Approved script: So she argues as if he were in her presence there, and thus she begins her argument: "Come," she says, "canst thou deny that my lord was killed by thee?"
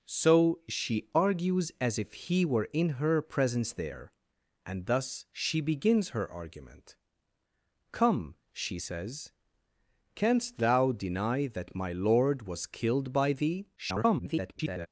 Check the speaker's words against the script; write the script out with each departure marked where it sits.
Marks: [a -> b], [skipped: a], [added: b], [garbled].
So she argues as if he were in her presence there, and thus she begins her argument: "Come," she says, "canst thou deny that my lord was killed by thee?" [garbled]